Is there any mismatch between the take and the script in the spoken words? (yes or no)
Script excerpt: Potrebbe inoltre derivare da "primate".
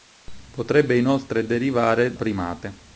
yes